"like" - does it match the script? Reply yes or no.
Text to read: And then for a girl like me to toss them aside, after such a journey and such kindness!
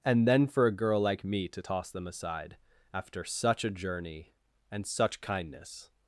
yes